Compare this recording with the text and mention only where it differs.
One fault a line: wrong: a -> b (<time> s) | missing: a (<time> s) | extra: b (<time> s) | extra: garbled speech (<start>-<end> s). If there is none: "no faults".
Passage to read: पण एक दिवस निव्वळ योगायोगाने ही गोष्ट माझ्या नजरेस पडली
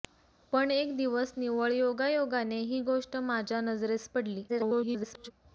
extra: garbled speech (4.5-5.3 s)